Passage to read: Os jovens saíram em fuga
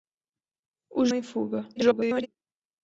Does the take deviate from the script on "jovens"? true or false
true